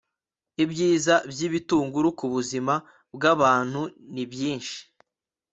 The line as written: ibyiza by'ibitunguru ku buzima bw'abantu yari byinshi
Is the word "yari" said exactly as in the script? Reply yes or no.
no